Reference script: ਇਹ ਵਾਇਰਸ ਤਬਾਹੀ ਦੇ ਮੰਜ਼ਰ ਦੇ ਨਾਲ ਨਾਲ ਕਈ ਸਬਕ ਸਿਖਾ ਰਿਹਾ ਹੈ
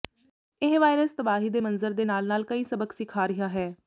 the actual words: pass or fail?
pass